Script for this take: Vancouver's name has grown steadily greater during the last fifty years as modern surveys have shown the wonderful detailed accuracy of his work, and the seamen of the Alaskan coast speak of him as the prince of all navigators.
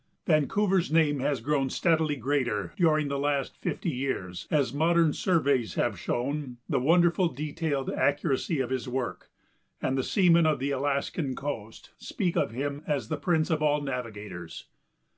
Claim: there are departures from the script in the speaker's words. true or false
false